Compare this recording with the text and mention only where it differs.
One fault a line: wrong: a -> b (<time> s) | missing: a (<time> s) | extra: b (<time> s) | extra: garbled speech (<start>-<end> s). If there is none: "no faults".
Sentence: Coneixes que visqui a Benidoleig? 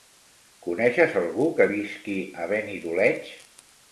extra: algú (1.2 s)